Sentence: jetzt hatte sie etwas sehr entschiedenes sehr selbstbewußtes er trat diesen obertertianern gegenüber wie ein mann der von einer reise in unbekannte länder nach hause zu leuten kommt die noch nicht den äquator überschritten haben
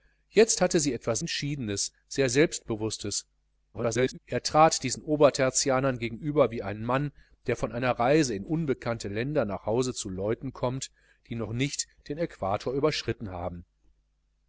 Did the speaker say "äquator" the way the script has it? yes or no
yes